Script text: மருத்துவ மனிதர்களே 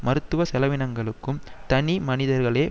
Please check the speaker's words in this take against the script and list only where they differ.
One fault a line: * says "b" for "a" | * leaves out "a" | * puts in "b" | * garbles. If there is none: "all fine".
* puts in "செலவினங்களுக்கும் தனி"